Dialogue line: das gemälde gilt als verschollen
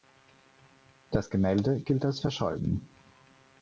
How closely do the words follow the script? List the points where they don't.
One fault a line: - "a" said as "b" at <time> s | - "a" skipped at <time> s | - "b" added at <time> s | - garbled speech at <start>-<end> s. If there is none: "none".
none